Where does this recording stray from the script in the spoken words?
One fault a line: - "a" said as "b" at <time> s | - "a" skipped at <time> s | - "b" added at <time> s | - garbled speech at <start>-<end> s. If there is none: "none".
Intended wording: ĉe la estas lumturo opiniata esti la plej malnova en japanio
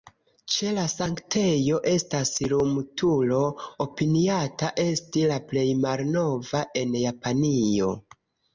- "sanktejo" added at 0.9 s